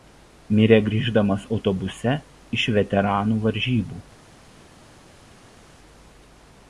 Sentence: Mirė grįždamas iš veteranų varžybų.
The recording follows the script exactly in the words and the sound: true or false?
false